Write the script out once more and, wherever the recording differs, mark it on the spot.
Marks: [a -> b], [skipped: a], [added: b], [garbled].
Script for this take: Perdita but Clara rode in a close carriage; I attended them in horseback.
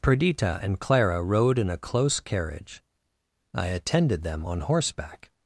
Perdita [but -> and] Clara rode in a close carriage; I attended them [in -> on] horseback.